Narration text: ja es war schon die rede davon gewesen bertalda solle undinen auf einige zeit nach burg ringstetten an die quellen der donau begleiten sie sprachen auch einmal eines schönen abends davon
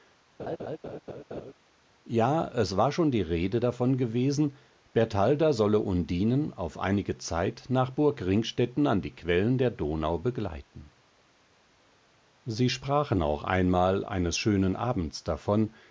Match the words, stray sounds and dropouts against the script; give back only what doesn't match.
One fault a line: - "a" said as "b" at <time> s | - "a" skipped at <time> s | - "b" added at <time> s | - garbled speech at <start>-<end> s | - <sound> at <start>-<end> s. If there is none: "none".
- laugh at 0.4-1.5 s